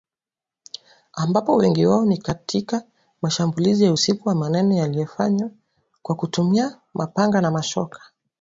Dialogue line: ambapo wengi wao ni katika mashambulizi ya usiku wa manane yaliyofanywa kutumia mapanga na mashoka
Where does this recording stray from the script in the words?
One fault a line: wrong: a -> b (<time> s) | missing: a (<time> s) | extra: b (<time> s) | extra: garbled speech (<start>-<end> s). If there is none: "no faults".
extra: kwa (6.0 s)